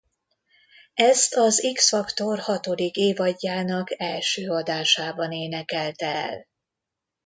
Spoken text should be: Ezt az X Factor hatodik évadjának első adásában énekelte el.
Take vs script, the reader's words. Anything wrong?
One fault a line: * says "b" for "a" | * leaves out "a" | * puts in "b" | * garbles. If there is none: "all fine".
all fine